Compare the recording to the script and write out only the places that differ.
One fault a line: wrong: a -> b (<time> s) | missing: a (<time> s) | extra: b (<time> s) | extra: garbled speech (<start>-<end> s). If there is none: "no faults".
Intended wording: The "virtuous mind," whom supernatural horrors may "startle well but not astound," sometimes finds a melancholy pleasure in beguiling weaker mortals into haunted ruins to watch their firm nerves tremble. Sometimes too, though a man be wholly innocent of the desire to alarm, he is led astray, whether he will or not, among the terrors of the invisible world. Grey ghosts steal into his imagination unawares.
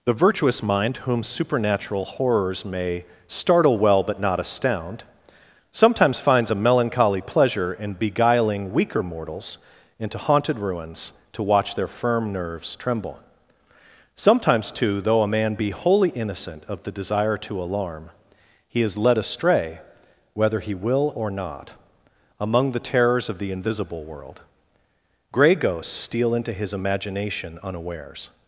no faults